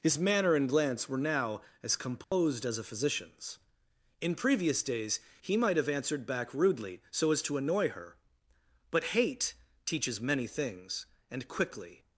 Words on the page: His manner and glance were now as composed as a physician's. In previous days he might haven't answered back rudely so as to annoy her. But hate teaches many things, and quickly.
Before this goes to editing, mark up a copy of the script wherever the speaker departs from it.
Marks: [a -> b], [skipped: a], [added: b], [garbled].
His manner and glance were now as composed as a physician's. In previous days he might [haven't -> have] answered back rudely so as to annoy her. But hate teaches many things, and quickly.